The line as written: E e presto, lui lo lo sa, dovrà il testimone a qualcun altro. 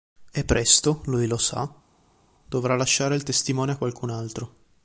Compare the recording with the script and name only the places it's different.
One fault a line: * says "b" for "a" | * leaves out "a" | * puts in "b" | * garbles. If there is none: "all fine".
* leaves out "e"
* leaves out "lo"
* puts in "lasciare"